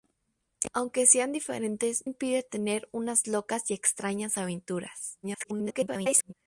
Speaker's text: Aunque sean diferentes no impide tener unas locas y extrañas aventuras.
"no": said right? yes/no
no